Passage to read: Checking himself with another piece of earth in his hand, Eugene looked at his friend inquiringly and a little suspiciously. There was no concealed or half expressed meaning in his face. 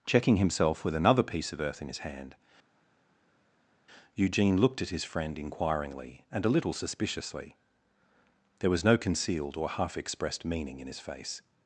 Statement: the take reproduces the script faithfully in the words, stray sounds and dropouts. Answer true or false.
true